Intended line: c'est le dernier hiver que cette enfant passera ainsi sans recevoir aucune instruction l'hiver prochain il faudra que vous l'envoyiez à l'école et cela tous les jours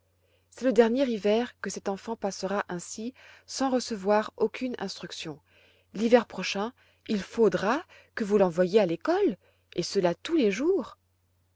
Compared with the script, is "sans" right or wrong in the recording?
right